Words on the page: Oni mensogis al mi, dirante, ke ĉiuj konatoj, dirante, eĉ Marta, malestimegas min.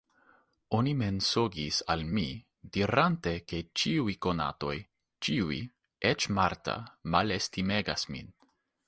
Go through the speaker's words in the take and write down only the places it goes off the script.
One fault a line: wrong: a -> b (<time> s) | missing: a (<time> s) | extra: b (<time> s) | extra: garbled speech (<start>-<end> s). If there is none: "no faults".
wrong: dirante -> ĉiuj (5.3 s)